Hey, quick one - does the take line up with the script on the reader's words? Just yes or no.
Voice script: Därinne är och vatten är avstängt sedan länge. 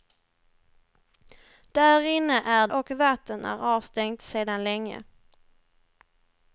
yes